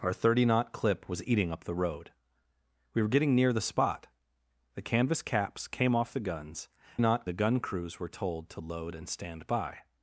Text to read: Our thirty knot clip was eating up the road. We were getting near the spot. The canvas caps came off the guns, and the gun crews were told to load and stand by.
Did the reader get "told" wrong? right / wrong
right